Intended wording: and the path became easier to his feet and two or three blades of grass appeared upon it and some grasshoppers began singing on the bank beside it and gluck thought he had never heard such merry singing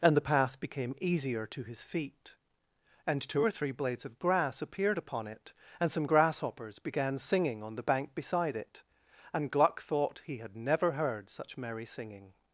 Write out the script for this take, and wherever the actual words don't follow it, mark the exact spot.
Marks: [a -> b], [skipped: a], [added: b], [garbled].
and the path became easier to his feet and two or three blades of grass appeared upon it and some grasshoppers began singing on the bank beside it and gluck thought he had never heard such merry singing